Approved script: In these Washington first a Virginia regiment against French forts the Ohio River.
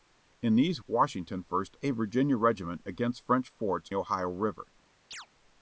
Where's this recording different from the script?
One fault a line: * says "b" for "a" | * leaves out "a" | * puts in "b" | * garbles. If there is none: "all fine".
all fine